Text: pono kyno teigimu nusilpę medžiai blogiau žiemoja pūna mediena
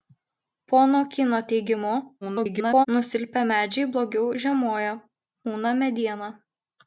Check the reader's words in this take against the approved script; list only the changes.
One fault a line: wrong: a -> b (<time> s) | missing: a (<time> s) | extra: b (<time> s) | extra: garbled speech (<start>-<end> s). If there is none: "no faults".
extra: garbled speech (2.2-2.9 s)